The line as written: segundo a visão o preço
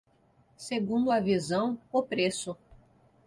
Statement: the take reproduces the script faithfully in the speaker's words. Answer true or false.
true